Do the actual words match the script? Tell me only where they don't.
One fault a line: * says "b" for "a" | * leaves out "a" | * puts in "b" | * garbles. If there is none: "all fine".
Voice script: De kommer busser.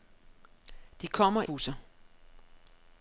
all fine